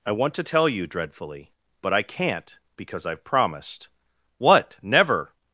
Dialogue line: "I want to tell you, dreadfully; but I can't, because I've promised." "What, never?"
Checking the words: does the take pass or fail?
pass